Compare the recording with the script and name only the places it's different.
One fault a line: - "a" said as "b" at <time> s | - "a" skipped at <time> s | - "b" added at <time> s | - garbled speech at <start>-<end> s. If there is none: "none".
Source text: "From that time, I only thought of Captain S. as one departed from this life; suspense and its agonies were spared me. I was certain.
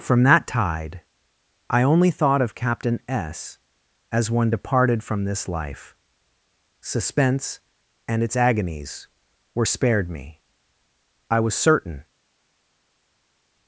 - "time" said as "tide" at 0.5 s